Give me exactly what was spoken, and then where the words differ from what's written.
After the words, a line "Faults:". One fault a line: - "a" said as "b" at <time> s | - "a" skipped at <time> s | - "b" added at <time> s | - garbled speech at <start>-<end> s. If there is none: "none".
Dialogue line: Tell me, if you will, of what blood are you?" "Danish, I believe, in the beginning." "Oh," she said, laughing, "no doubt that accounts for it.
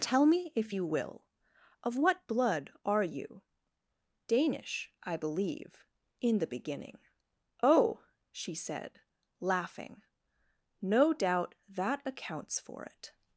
Tell me, if you will, of what blood are you?" "Danish, I believe, in the beginning." "Oh," she said, laughing, "no doubt that accounts for it.
Faults:
none